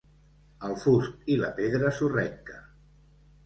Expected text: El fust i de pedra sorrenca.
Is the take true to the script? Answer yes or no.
yes